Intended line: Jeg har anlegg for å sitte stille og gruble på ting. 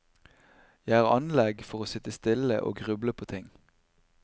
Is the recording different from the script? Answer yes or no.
no